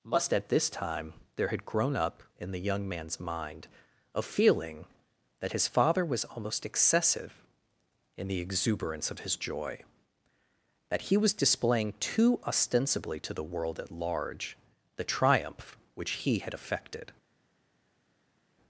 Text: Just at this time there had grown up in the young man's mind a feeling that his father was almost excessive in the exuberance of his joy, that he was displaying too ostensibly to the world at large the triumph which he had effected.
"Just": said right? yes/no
no